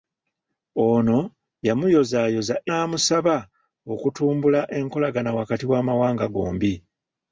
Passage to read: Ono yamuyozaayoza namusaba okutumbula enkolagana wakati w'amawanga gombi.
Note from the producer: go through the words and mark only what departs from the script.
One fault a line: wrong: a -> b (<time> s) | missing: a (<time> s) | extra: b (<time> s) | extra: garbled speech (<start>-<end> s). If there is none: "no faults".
no faults